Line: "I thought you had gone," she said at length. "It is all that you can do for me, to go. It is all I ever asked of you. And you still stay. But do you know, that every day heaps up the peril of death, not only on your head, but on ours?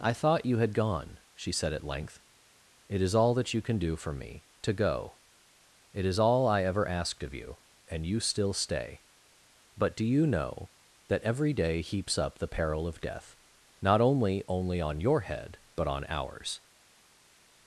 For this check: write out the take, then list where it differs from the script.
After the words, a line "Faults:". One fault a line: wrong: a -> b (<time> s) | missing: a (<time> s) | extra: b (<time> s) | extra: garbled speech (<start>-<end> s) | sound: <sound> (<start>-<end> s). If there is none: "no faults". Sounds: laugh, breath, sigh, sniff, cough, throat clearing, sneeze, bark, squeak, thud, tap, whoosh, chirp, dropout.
"I thought you had gone," she said at length. "It is all that you can do for me, to go. It is all I ever asked of you. And you still stay. But do you know, that every day heaps up the peril of death, not only only on your head, but on ours?
Faults:
extra: only (14.5 s)